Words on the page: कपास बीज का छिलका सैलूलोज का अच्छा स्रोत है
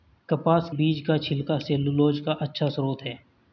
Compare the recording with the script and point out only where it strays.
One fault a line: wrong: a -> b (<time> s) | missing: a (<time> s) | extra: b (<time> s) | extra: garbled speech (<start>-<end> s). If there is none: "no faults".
no faults